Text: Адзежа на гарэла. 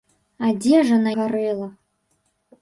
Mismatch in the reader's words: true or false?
false